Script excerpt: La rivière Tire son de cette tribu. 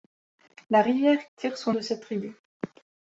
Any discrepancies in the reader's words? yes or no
no